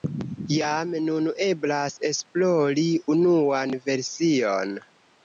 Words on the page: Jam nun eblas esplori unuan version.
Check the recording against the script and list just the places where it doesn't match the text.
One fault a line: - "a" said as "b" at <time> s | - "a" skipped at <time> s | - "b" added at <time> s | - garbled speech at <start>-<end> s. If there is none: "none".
none